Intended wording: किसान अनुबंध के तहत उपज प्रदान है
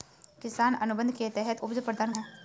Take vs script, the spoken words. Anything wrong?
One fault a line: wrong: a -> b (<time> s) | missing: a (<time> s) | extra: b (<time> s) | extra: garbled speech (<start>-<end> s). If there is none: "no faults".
no faults